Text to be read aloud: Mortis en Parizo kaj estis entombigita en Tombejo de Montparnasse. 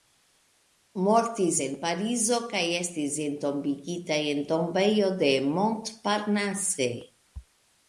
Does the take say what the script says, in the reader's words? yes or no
yes